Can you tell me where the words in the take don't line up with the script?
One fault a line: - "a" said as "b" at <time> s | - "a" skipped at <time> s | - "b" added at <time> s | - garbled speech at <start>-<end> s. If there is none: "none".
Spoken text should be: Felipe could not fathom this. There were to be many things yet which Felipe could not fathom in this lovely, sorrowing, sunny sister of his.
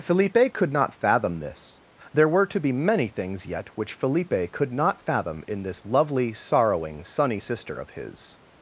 none